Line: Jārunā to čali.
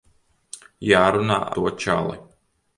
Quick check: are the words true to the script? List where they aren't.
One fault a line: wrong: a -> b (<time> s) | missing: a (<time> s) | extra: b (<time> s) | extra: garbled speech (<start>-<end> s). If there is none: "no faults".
no faults